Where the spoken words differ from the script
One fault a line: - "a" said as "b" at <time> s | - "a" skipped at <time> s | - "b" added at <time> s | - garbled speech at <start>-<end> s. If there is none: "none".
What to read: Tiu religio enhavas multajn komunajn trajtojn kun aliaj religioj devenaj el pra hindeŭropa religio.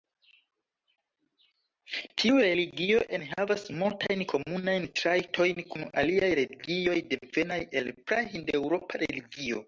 none